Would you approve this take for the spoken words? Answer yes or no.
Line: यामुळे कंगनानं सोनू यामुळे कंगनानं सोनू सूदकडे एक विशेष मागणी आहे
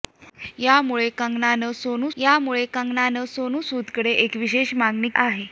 yes